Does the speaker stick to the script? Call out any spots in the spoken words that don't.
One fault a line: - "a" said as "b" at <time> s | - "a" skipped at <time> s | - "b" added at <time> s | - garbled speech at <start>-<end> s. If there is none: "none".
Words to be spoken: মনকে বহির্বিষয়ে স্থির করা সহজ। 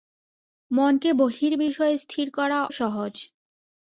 none